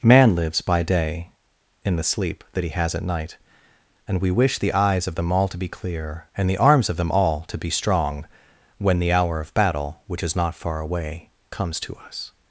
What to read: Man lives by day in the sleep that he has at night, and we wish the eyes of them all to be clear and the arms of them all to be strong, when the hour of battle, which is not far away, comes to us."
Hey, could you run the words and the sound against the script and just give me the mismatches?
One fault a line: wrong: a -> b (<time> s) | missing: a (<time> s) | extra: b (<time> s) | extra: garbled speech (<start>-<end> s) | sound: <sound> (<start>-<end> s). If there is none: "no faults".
no faults